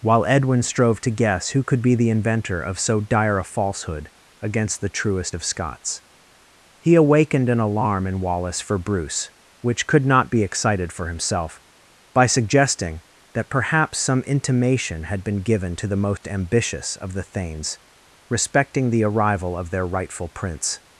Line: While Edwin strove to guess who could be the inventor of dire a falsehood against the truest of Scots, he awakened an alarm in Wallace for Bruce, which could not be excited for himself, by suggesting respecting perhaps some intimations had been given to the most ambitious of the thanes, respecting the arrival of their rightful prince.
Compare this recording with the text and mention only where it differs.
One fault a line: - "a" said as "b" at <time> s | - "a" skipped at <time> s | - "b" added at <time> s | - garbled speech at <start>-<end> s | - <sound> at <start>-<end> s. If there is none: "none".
- "so" added at 2.8 s
- "respecting" said as "that" at 13.3 s
- "intimations" said as "intimation" at 14.2 s
- dropout at 16.2-16.2 s